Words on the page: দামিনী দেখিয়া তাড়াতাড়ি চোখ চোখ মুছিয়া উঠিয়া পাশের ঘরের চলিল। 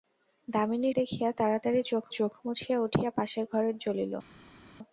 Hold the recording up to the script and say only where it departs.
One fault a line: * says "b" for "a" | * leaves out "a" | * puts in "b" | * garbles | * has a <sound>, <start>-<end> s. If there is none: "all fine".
all fine